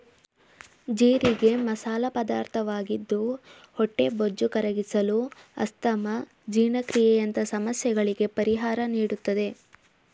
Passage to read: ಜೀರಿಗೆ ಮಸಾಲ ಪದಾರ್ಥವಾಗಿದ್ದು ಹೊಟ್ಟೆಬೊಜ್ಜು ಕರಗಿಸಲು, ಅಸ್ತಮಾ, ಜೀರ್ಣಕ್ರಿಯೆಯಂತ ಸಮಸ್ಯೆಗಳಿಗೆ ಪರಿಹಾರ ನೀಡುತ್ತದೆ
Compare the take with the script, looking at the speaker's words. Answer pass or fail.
pass